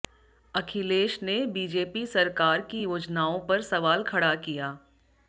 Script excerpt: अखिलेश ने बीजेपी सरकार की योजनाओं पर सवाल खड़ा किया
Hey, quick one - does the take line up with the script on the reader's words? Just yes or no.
yes